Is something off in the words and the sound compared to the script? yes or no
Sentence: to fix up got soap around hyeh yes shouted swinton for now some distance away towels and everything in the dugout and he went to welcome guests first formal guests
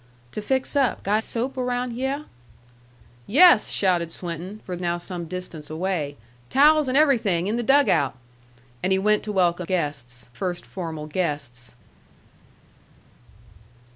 no